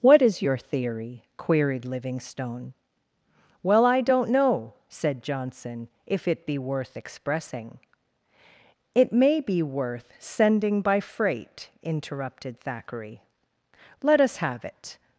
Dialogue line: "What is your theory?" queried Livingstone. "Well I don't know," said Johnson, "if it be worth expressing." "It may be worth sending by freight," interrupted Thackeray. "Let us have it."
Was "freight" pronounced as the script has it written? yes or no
yes